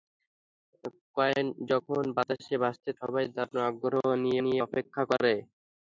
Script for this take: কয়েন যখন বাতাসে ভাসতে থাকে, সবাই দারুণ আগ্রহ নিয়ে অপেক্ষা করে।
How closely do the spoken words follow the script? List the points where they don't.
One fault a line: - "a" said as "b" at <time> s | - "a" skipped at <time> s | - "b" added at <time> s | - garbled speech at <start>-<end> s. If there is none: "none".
- "থাকে" skipped at 2.9 s
- "নিয়ে" added at 4.4 s